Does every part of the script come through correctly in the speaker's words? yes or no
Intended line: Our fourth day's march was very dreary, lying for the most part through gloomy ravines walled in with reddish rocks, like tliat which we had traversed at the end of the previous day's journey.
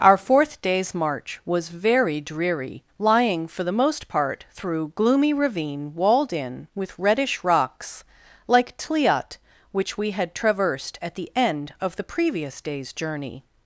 no